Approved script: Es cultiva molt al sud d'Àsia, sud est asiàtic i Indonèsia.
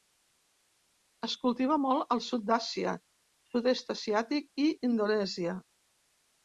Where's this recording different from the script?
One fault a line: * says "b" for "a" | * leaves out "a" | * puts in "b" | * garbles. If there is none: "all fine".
all fine